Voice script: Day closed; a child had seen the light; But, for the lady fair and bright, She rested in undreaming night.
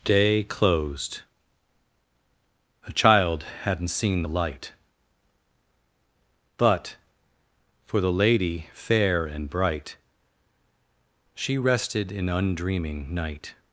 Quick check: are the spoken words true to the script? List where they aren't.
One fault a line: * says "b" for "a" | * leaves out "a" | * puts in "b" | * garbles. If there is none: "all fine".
* says "hadn't" for "had"